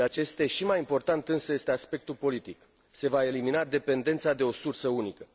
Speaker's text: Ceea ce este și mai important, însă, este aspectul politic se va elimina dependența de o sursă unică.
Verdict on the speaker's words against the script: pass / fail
pass